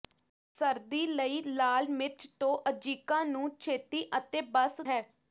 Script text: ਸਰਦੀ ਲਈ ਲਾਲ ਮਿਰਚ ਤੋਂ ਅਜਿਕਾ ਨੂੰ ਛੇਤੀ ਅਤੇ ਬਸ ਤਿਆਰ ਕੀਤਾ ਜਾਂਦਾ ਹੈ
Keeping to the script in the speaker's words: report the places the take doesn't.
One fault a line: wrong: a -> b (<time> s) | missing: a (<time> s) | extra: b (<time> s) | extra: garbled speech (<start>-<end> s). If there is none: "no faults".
missing: ਤਿਆਰ ਕੀਤਾ ਜਾਂਦਾ (4.8 s)